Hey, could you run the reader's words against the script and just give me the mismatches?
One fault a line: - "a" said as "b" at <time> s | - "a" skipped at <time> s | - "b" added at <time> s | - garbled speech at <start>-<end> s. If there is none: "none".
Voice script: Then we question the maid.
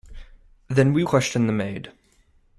none